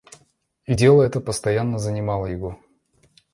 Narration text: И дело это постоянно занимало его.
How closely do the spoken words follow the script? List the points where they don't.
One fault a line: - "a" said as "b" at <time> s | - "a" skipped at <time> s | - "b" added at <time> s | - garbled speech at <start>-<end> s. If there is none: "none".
none